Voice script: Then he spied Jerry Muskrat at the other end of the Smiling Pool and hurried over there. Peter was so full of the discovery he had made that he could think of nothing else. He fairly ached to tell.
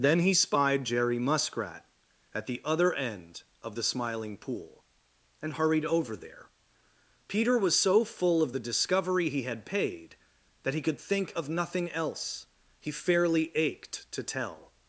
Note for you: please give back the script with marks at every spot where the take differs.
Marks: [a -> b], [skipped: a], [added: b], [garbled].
Then he spied Jerry Muskrat at the other end of the Smiling Pool and hurried over there. Peter was so full of the discovery he had [made -> paid] that he could think of nothing else. He fairly ached to tell.